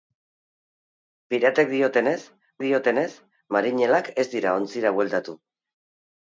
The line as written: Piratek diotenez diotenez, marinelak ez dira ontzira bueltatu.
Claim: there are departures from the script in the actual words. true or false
false